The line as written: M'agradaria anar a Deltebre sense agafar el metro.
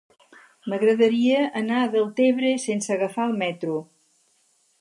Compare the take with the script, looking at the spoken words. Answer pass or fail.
pass